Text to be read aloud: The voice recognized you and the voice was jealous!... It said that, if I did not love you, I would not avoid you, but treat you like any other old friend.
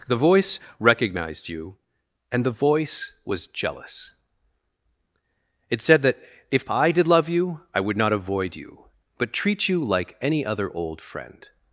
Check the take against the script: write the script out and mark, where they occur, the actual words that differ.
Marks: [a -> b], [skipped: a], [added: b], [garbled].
The voice recognized you and the voice was jealous!... It said that, if I did [skipped: not] love you, I would not avoid you, but treat you like any other old friend.